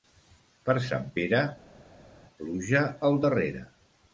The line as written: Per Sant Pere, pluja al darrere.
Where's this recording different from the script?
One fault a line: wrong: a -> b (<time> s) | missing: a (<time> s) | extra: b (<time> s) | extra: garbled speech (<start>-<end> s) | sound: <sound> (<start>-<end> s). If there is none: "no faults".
no faults